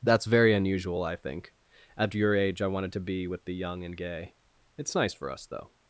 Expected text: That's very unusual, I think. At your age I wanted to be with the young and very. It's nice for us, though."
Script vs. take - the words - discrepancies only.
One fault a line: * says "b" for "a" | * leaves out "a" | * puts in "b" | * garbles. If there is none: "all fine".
* says "gay" for "very"